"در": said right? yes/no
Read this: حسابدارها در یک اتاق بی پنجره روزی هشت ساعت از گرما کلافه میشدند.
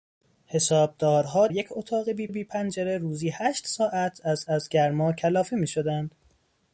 no